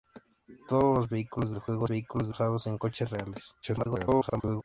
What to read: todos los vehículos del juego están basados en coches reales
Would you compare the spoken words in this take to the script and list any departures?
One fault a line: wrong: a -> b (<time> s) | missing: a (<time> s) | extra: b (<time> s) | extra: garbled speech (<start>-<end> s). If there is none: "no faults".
wrong: están -> vehículos (1.9 s)
extra: garbled speech (3.6-4.6 s)